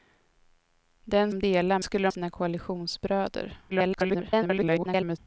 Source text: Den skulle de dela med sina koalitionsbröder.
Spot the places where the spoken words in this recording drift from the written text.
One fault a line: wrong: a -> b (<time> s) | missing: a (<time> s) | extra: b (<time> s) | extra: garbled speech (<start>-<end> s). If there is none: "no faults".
missing: skulle (1.3 s)
wrong: med -> skulle (1.8 s)
extra: garbled speech (3.7-5.2 s)